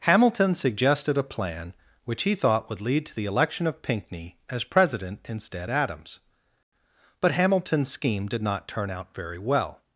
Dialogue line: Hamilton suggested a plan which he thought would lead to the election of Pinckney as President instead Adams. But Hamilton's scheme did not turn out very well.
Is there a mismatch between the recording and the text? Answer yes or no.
no